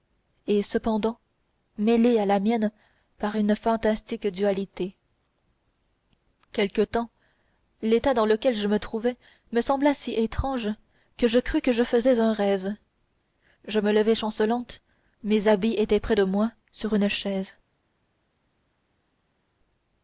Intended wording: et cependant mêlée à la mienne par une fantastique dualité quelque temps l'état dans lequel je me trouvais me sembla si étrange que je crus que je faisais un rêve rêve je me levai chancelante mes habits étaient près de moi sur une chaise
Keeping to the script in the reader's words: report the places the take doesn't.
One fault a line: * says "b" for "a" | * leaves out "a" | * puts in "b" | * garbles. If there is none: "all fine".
* leaves out "rêve"